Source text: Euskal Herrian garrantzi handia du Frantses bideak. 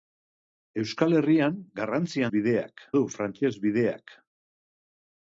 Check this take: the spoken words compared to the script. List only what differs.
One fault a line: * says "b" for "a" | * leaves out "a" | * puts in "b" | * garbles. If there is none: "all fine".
* says "bideak" for "handia"